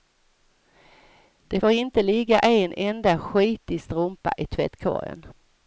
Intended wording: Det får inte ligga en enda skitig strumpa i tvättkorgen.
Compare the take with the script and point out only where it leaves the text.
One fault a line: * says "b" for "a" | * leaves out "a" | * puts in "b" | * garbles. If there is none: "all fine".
all fine